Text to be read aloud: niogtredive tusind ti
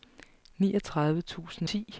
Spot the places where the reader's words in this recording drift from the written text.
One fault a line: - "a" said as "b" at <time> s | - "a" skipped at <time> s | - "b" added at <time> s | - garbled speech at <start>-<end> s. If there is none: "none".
none